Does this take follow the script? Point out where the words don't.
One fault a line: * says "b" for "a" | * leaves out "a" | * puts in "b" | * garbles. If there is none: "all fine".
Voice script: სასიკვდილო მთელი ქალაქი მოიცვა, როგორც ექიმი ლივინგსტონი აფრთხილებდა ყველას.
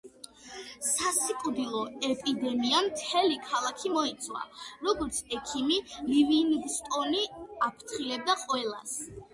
* puts in "ეპიდემიამ"